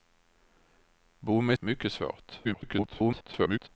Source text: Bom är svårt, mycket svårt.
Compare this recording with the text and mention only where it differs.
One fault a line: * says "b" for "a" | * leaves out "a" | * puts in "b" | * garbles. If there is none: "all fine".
* leaves out "svårt"
* garbles